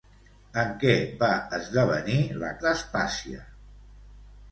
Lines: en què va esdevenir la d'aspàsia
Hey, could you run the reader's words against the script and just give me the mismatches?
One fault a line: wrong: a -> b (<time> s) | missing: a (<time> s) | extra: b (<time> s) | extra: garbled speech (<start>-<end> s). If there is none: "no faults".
no faults